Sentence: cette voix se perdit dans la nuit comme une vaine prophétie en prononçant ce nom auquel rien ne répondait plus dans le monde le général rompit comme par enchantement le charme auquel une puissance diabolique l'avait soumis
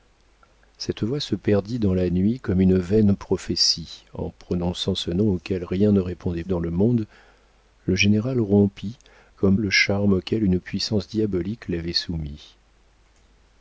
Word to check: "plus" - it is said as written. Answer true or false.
false